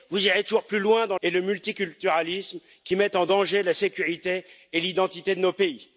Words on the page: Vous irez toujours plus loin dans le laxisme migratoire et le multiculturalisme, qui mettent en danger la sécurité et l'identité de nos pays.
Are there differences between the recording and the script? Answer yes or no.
yes